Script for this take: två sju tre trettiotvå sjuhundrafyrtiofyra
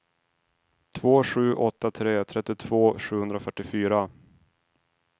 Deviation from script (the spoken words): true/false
true